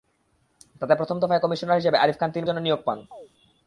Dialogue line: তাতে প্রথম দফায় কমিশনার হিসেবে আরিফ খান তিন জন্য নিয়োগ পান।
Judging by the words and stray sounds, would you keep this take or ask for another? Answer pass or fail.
fail